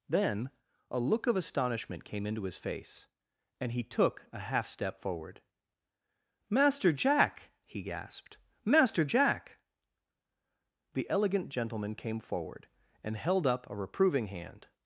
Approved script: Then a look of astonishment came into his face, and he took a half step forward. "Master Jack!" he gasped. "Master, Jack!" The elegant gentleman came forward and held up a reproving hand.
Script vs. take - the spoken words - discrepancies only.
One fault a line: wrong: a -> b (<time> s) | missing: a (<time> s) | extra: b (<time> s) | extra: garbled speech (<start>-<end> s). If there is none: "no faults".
no faults